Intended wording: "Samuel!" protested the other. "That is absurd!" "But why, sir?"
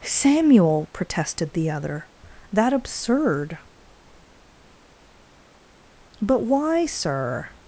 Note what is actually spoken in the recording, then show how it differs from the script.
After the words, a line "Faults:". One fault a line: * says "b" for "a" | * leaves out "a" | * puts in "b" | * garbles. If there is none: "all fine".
"Samuel!" protested the other. "That absurd!" "But why, sir?"
Faults:
* leaves out "is"